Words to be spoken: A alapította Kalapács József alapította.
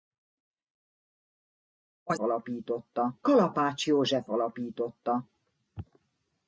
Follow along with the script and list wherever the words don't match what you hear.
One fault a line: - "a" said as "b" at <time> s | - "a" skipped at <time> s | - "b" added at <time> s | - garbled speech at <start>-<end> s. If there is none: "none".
none